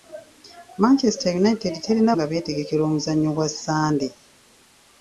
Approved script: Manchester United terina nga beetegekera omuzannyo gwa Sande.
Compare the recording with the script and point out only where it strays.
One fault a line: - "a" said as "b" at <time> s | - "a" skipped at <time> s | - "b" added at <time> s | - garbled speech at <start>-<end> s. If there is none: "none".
none